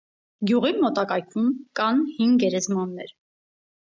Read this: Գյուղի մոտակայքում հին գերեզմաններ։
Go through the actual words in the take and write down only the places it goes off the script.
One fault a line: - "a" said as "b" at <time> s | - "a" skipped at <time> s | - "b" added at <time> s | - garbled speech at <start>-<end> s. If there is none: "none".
- "կան" added at 1.8 s